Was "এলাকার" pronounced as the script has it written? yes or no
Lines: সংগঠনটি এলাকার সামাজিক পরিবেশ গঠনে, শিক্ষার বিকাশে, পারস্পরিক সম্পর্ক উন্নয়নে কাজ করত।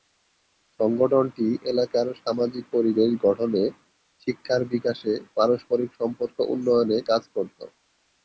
yes